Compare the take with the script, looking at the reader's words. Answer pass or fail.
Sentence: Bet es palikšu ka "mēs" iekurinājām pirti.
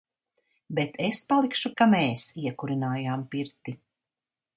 pass